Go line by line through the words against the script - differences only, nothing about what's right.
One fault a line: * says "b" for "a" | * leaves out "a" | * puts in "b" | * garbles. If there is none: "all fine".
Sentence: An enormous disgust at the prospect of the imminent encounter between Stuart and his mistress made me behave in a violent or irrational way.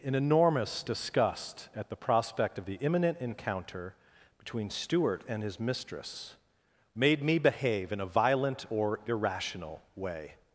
all fine